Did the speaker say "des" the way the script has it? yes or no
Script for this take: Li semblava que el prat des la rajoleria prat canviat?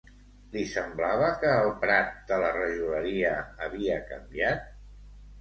no